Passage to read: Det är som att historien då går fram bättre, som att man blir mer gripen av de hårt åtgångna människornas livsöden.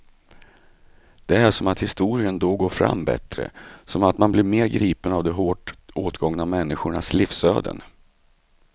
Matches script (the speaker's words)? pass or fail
pass